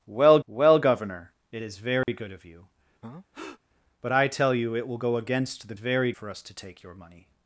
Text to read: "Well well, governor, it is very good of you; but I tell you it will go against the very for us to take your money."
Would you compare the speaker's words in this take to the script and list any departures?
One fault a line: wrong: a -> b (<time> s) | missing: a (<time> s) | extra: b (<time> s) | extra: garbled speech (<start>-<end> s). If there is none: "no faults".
no faults